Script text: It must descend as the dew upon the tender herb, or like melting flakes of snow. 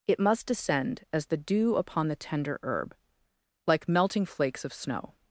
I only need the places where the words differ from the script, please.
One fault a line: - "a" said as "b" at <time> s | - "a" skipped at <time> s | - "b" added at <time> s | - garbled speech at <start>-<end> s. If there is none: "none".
- "or" skipped at 3.0 s